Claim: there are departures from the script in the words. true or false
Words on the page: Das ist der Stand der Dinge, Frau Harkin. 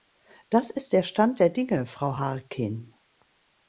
false